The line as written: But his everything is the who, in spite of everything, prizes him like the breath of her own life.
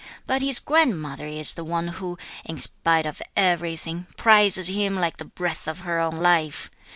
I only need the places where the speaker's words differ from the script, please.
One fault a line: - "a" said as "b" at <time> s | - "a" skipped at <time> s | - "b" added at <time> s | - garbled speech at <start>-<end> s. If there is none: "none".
- "everything" said as "grandmother" at 0.6 s
- "one" added at 1.6 s